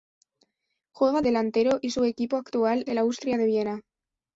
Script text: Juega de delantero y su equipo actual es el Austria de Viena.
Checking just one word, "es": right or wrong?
wrong